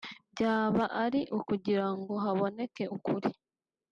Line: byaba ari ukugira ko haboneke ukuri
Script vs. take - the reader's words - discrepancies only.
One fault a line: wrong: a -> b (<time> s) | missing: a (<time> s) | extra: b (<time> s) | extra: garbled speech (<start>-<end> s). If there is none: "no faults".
wrong: ko -> ngo (2.0 s)